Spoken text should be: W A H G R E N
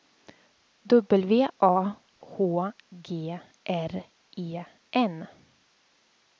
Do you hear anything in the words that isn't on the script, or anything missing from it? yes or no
no